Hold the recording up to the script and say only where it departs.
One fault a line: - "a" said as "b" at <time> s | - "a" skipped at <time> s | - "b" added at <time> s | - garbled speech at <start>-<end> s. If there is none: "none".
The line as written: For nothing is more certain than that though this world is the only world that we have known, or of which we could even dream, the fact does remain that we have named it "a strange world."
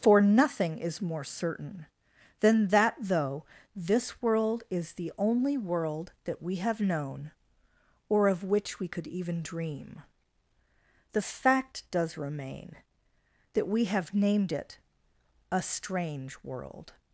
none